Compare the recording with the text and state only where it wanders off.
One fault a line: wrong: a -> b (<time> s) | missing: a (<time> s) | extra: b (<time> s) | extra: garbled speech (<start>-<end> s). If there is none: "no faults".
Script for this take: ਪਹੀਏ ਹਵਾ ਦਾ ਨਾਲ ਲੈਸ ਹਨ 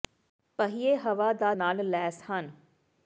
no faults